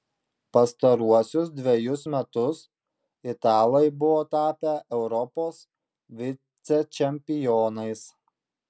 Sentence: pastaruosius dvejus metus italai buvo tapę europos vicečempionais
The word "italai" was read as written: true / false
true